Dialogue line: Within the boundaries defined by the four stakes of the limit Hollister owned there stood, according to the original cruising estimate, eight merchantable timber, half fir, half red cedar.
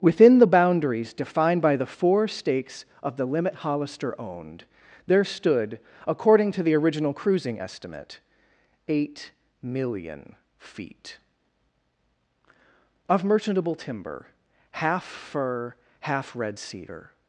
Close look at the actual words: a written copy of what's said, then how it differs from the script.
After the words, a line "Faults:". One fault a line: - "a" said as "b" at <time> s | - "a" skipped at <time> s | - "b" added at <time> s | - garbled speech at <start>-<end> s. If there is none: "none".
Within the boundaries defined by the four stakes of the limit Hollister owned there stood, according to the original cruising estimate, eight million feet of merchantable timber, half fir, half red cedar.
Faults:
- "million feet of" added at 9.6 s